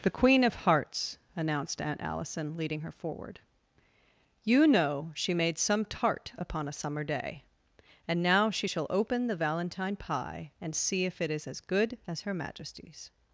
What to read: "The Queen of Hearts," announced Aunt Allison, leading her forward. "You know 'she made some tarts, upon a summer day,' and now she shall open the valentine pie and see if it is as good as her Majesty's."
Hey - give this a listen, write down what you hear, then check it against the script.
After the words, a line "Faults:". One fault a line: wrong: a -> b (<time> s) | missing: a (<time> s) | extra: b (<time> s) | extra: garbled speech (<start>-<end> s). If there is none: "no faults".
"The Queen of Hearts," announced Aunt Allison, leading her forward. "You know 'she made some tart, upon a summer day,' and now she shall open the valentine pie and see if it is as good as her Majesty's."
Faults:
wrong: tarts -> tart (5.8 s)